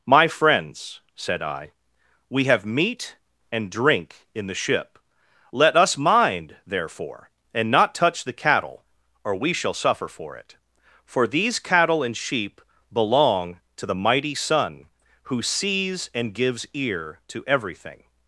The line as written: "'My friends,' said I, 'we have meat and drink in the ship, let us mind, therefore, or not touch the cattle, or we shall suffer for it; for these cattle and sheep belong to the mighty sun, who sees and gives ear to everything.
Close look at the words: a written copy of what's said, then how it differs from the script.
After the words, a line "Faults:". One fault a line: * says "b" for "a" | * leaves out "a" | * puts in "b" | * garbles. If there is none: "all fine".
"'My friends,' said I, 'we have meat and drink in the ship, let us mind, therefore, and not touch the cattle, or we shall suffer for it; for these cattle and sheep belong to the mighty sun, who sees and gives ear to everything.
Faults:
* says "and" for "or"